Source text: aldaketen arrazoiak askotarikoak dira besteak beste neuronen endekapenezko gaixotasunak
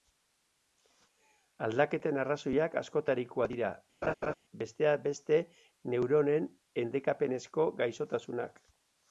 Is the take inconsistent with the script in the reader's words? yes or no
no